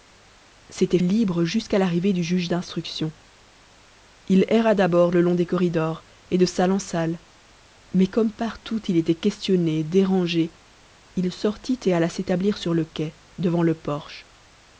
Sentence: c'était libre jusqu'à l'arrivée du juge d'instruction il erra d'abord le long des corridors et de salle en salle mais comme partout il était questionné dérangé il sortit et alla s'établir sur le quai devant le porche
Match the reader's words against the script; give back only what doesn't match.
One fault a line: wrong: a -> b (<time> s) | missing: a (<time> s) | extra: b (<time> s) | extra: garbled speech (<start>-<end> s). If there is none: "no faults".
no faults